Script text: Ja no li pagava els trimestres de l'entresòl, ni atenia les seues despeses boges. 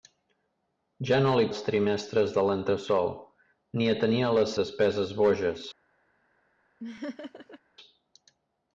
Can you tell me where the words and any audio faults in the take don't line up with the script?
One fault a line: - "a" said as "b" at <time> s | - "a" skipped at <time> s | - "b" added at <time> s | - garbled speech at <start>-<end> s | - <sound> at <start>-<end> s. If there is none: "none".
- "pagava" skipped at 1.4 s
- "seues" skipped at 4.6 s
- laugh at 6.8-7.6 s